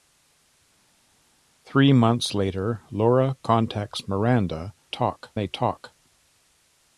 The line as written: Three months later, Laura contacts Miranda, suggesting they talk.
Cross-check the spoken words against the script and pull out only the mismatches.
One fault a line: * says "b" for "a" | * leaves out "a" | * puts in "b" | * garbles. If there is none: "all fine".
* says "talk" for "suggesting"